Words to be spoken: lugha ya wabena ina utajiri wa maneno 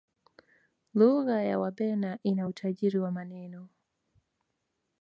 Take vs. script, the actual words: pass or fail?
pass